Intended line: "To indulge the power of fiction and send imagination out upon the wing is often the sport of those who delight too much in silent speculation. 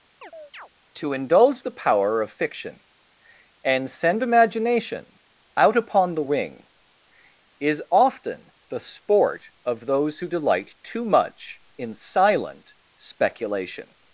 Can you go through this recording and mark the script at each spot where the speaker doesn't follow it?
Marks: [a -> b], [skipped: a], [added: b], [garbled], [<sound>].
[chirp] "To indulge the power of fiction and send imagination out upon the wing is often the sport of those who delight too much in silent speculation.